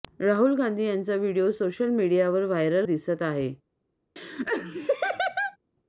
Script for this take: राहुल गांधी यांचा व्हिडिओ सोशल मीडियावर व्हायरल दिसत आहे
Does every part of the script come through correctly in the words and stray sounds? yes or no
no